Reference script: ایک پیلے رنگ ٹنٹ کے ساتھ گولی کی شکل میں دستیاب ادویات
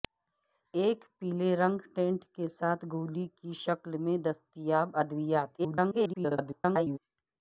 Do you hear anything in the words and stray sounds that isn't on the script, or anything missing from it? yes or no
yes